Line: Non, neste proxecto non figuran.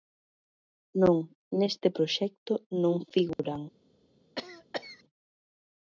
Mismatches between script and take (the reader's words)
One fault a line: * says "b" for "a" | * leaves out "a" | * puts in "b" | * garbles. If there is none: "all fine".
all fine